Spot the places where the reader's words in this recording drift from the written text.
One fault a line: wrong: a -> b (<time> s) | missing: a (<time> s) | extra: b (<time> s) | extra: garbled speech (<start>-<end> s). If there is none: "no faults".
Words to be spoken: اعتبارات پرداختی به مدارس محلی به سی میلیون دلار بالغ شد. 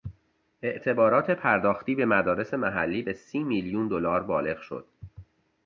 no faults